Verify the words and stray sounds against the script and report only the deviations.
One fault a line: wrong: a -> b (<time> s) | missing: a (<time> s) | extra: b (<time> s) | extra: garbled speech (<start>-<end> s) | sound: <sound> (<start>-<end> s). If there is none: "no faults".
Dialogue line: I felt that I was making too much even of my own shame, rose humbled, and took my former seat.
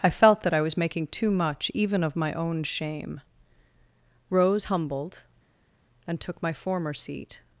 no faults